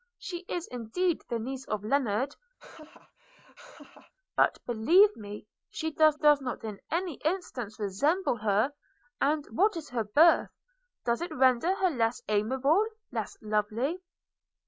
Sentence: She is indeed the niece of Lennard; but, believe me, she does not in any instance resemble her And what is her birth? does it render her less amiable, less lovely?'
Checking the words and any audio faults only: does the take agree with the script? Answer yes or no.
no